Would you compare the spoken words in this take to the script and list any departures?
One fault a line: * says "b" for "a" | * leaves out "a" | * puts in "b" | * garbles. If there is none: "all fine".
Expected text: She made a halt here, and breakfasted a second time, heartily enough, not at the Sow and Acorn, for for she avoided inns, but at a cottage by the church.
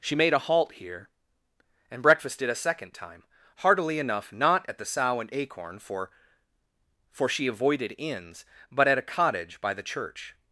all fine